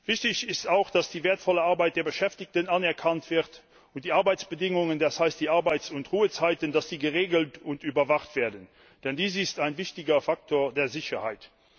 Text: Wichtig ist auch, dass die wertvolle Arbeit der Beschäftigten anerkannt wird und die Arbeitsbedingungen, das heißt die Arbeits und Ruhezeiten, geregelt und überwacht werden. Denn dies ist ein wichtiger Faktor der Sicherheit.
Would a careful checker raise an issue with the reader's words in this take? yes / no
no